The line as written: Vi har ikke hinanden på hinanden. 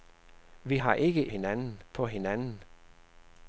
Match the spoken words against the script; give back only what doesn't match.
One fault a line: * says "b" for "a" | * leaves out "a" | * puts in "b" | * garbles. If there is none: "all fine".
all fine